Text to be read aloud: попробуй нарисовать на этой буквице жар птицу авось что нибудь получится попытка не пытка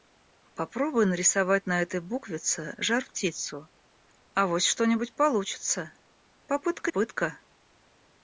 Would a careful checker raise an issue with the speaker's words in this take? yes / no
yes